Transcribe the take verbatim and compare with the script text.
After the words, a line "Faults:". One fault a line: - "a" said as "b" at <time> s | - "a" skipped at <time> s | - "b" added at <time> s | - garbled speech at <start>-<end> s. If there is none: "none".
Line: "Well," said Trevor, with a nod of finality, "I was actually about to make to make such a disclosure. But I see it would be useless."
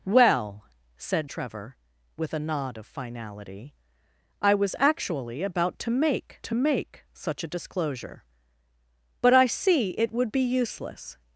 "Well," said Trevor, with a nod of finality, "I was actually about to make to make such a disclosure. But I see it would be useless."
Faults:
none